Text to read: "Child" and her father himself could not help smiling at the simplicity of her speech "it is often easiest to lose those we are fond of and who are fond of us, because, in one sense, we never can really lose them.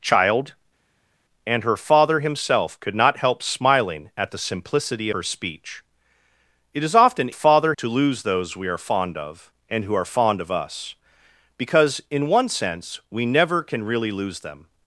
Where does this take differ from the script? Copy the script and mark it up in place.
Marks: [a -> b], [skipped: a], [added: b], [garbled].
"Child" and her father himself could not help smiling at the simplicity [skipped: of] her speech "it is often [easiest -> father] to lose those we are fond of and who are fond of us, because, in one sense, we never can really lose them.